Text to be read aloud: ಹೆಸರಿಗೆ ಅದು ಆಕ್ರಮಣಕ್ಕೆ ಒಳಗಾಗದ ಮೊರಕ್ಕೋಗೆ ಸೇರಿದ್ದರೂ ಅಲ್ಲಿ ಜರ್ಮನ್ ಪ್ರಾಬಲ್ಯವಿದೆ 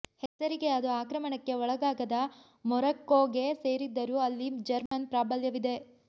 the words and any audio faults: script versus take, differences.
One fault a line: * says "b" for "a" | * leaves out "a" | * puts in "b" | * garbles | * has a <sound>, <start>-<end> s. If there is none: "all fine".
* has a dropout, 0.3-0.4 s
* has a dropout, 4.9-4.9 s